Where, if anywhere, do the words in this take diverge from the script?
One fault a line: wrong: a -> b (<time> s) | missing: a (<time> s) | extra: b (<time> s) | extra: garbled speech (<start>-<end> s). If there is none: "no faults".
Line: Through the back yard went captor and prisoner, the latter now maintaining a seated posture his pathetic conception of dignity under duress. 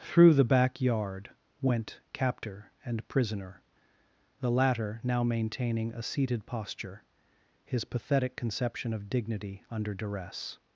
no faults